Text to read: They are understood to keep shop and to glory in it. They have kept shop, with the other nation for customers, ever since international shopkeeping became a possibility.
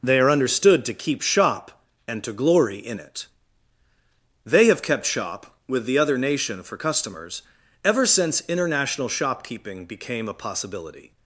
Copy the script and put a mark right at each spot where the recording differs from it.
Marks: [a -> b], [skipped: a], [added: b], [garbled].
They are understood to keep shop and to glory in it. They have kept shop, with the other nation for customers, ever since international shopkeeping became a possibility.